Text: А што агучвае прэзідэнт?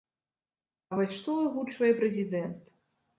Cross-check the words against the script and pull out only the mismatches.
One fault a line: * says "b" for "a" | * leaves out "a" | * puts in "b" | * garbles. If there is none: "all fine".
* puts in "вось"